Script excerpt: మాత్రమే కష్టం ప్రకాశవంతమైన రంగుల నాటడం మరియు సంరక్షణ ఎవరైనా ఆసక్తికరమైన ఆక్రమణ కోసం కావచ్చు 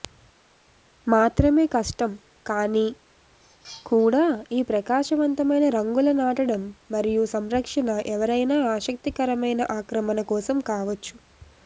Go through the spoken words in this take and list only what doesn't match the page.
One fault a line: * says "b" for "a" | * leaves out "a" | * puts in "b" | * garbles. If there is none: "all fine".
* puts in "కానీ కూడా ఈ"